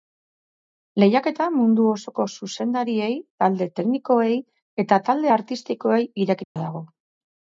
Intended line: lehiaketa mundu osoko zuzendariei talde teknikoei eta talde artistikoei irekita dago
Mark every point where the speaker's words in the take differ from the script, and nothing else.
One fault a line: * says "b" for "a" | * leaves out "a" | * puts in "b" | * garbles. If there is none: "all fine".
all fine